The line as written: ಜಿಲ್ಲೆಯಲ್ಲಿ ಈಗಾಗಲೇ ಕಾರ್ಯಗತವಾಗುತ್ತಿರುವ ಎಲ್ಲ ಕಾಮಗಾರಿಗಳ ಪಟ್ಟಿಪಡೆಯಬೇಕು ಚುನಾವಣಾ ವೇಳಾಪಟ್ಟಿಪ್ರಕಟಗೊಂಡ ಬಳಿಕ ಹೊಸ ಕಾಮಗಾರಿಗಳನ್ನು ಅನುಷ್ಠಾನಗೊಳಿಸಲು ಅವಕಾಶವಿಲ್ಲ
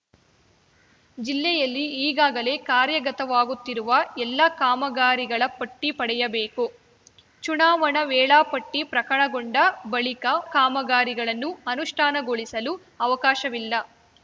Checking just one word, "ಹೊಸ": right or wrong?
wrong